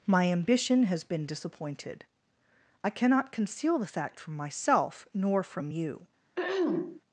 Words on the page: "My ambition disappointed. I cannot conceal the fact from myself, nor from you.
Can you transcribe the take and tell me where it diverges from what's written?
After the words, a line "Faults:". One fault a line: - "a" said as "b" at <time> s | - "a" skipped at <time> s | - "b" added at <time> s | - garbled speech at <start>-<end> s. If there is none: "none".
"My ambition has been disappointed. I cannot conceal the fact from myself, nor from you.
Faults:
- "has been" added at 0.8 s